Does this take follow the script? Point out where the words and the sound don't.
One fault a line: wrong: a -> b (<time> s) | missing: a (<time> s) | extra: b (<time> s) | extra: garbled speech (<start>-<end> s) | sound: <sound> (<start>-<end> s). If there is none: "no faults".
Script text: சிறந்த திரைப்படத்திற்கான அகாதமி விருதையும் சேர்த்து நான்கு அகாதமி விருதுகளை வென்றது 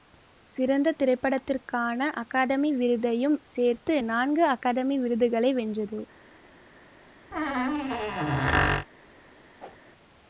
sound: squeak (7.3-8.9 s)
sound: whoosh (9.6-9.8 s)